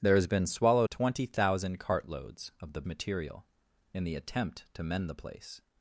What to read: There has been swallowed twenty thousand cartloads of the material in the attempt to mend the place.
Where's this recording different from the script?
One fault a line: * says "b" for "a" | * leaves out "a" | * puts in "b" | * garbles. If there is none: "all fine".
all fine